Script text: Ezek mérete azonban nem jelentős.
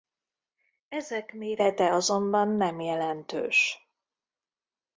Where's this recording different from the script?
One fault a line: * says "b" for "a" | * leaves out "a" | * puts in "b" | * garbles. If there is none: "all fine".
all fine